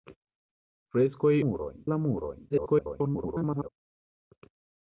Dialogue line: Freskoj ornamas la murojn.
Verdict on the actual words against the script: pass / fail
fail